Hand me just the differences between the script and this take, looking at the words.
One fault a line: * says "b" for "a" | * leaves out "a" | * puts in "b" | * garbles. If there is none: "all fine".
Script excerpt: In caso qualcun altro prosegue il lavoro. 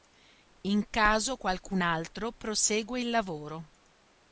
all fine